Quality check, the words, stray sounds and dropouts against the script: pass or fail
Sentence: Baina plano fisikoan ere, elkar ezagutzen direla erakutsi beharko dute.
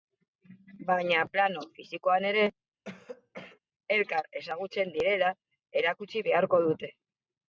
fail